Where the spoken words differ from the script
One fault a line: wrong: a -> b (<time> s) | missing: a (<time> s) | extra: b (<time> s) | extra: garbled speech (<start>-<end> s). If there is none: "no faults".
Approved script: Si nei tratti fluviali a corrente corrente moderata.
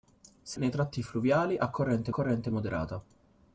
no faults